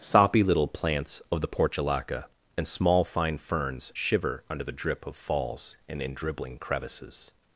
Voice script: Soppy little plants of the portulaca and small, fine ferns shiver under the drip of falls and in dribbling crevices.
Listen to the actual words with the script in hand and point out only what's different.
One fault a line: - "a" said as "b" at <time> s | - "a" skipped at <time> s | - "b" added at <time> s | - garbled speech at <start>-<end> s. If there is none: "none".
none